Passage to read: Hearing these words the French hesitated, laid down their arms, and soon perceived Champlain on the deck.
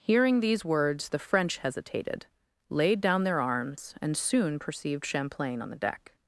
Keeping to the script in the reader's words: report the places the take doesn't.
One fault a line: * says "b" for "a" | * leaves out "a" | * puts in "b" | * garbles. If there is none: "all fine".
all fine